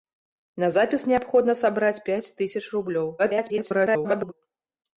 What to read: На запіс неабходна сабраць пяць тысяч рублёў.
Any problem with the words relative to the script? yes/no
yes